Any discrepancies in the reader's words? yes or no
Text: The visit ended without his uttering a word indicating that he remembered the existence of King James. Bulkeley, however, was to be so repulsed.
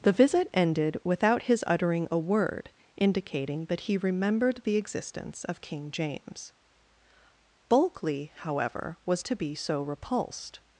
no